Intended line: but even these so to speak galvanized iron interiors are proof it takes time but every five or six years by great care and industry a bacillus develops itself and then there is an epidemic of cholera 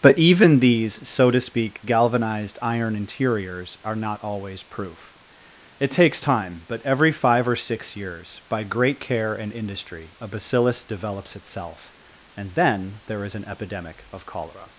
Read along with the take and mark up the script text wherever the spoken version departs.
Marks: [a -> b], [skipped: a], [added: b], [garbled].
but even these so to speak galvanized iron interiors are [added: not always] proof it takes time but every five or six years by great care and industry a bacillus develops itself and then there is an epidemic of cholera